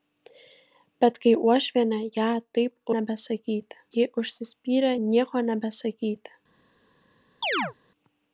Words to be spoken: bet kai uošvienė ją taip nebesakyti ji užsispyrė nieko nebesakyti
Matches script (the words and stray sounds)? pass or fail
fail